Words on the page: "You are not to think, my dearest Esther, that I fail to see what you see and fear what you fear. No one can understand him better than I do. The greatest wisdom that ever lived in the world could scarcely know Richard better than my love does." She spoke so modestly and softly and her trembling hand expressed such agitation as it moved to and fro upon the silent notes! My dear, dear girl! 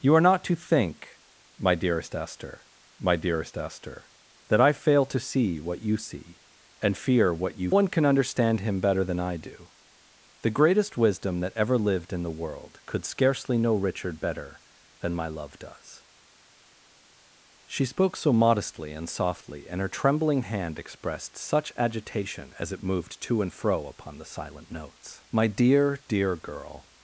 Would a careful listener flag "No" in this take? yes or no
yes